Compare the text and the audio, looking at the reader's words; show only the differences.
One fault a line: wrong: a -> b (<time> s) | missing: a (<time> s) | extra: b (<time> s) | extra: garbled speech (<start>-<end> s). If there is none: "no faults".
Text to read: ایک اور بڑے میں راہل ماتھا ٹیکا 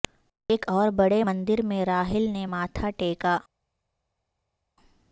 extra: مندر (1.2 s)
extra: نے (2.3 s)